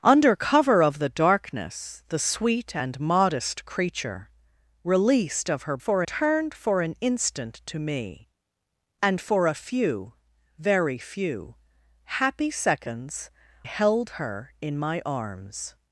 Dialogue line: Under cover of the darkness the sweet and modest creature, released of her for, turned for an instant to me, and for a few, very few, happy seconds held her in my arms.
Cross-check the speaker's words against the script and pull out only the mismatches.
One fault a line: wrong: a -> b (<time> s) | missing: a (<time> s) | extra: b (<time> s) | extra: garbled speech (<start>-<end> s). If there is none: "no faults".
no faults